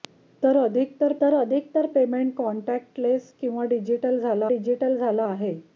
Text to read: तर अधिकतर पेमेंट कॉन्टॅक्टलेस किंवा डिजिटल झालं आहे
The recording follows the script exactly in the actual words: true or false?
false